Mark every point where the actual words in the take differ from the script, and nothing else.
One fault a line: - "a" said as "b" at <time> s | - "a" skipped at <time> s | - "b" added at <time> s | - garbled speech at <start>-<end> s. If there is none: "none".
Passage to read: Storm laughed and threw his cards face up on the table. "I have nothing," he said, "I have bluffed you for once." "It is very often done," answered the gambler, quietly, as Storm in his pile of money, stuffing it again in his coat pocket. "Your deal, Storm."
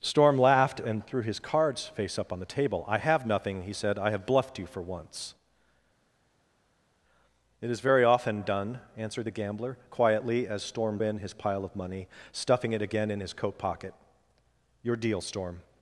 none